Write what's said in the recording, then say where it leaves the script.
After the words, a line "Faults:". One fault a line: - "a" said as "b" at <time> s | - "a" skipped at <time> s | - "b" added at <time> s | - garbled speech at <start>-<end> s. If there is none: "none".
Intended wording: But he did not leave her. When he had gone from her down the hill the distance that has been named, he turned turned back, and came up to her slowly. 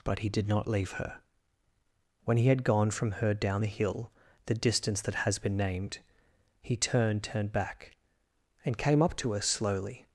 But he did not leave her. When he had gone from her down the hill the distance that has been named, he turned turned back, and came up to her slowly.
Faults:
none